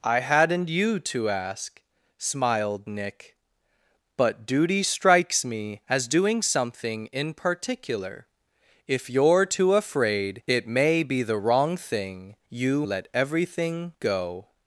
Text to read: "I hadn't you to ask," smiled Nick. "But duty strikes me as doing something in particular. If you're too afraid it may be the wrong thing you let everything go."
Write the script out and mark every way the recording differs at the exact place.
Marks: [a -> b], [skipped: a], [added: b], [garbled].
"I hadn't you to ask," smiled Nick. "But duty strikes me as doing something in particular. If you're too afraid it may be the wrong thing you let everything go."